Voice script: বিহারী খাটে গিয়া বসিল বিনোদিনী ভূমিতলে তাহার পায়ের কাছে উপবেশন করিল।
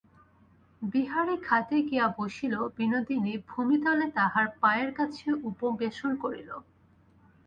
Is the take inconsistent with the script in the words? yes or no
no